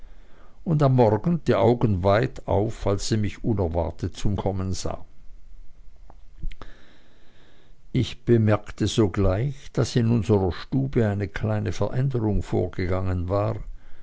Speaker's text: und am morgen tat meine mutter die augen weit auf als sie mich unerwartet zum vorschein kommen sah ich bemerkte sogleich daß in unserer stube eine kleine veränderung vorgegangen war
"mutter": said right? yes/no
no